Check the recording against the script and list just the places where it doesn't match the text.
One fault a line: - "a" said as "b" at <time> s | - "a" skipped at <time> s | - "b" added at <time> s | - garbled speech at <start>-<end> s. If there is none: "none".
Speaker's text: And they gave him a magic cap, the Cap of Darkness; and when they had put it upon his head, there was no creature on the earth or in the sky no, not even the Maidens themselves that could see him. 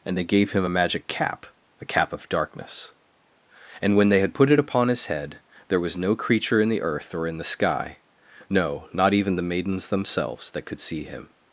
- "on" said as "in" at 6.6 s